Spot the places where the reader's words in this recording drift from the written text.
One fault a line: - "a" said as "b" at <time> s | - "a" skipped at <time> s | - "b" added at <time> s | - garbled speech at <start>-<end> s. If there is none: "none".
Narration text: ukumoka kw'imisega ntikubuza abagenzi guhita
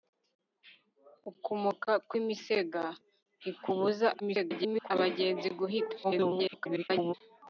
- garbled speech at 4.2-4.9 s
- garbled speech at 6.0-7.1 s